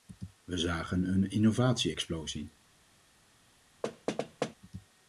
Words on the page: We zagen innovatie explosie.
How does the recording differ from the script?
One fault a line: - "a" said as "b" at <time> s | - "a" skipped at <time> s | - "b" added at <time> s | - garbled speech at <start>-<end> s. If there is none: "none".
- "een" added at 1.1 s